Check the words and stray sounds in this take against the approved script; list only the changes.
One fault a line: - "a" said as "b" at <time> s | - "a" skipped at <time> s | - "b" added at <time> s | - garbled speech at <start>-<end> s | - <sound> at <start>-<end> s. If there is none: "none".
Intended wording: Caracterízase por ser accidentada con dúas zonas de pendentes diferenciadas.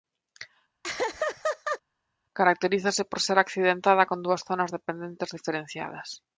- laugh at 0.8-1.8 s